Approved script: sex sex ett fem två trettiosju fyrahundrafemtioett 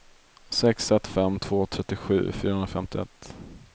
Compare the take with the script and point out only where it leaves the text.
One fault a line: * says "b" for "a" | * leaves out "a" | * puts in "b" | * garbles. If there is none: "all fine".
* leaves out "sex"